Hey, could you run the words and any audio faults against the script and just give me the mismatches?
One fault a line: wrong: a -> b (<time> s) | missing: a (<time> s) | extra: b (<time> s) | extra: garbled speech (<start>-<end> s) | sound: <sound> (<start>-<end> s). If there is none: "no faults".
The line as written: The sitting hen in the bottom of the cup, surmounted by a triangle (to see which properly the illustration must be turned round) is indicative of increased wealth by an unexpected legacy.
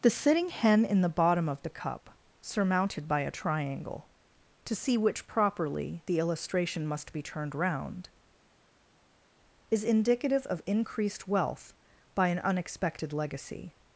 no faults